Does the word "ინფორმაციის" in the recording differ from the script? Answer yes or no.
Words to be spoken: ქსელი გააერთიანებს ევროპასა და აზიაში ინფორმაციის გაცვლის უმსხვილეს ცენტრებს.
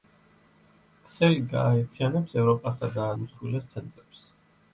yes